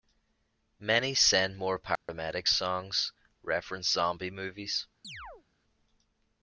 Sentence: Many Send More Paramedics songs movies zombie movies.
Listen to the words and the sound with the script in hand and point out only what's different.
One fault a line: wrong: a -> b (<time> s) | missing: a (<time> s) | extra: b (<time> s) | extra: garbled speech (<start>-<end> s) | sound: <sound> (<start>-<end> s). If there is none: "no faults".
sound: dropout (2.0-2.1 s)
wrong: movies -> reference (3.4 s)
sound: chirp (5.0-5.4 s)